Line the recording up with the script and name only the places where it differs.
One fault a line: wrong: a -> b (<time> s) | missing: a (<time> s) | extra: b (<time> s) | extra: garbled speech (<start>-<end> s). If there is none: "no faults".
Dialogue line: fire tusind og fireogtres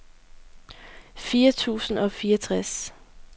no faults